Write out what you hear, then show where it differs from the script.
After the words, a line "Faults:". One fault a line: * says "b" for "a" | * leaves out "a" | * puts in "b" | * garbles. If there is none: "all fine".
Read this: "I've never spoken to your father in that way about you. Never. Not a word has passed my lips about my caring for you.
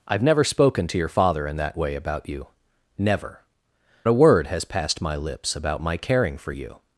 "I've never spoken to your father in that way about you. Never. A word has passed my lips about my caring for you.
Faults:
* leaves out "Not"